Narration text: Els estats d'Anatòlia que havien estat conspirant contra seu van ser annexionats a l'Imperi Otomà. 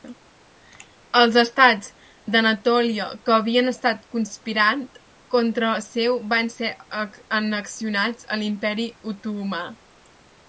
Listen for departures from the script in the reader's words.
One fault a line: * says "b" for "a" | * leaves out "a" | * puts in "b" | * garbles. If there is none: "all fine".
all fine